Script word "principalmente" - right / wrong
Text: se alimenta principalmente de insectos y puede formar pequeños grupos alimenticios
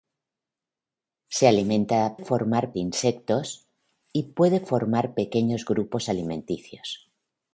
wrong